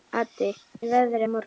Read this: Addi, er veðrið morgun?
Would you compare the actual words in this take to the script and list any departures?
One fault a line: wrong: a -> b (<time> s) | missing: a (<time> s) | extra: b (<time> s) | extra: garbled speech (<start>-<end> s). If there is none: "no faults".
no faults